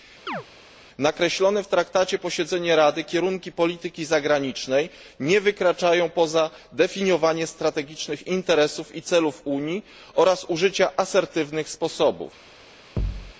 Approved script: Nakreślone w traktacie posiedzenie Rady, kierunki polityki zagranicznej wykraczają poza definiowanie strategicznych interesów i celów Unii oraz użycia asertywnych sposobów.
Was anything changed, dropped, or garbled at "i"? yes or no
no